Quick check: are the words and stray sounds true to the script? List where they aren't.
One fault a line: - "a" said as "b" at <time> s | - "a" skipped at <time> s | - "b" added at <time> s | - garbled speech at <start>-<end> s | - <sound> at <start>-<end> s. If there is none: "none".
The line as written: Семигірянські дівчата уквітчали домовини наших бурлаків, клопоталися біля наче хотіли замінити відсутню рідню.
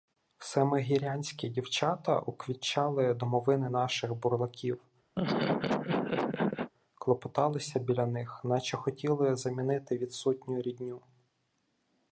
- laugh at 5.2-6.7 s
- "них" added at 8.0 s